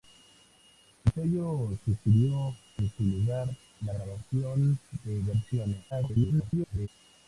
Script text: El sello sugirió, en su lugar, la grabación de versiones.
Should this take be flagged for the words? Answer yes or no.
yes